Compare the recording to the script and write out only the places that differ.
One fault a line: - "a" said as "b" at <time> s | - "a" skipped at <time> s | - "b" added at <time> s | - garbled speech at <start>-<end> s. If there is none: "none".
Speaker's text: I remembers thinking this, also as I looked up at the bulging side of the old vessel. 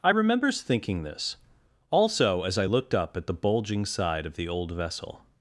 none